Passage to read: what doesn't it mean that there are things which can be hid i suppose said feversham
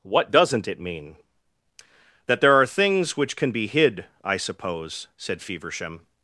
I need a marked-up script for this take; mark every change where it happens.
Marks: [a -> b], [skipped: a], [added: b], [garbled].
what doesn't it mean that there are things which can be hid i suppose said feversham